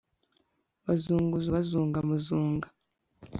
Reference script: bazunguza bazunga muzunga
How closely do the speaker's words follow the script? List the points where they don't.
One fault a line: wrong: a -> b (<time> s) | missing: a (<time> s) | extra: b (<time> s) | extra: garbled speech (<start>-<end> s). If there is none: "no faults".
no faults